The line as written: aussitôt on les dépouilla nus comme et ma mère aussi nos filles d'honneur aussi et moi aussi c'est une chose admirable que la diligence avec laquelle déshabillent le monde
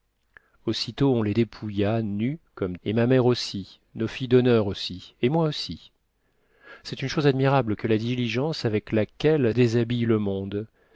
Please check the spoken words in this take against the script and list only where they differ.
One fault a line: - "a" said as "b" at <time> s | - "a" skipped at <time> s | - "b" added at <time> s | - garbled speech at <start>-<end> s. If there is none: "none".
none